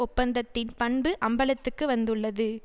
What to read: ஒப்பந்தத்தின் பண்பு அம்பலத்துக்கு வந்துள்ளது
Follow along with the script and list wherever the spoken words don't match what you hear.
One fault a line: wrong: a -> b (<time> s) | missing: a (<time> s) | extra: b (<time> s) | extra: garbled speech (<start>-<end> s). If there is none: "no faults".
no faults